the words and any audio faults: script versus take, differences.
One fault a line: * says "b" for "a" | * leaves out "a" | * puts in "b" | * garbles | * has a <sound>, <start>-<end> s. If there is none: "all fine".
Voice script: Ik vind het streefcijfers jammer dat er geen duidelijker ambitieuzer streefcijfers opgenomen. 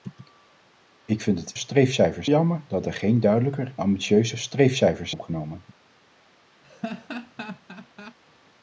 * has a laugh, 6.6-8.2 s